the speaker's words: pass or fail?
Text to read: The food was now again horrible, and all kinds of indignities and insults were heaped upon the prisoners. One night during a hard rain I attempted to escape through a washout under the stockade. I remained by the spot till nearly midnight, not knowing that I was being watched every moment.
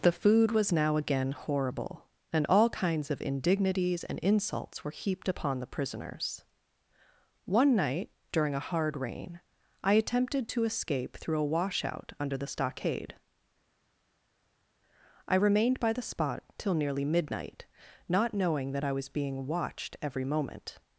pass